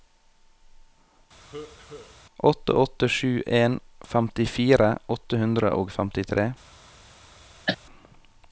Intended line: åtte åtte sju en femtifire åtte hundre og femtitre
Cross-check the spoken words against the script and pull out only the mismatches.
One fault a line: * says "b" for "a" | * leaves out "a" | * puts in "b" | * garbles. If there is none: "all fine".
all fine